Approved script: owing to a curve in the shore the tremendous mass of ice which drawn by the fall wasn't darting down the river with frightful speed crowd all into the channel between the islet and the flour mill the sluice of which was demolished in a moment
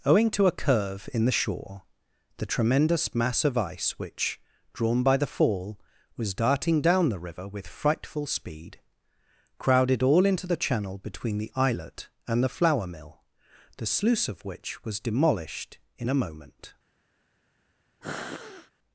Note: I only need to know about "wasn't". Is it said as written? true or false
false